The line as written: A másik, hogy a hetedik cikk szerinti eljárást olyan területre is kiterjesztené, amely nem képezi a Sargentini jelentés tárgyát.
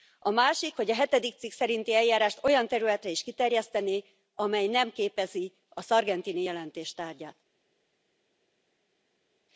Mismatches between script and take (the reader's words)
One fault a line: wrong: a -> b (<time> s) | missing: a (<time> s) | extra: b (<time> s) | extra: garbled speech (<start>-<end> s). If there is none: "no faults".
no faults